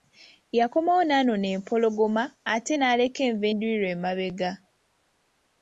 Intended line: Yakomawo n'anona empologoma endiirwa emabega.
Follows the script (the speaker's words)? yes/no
no